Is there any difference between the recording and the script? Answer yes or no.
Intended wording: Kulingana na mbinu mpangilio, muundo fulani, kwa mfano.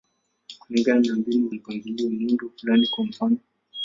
no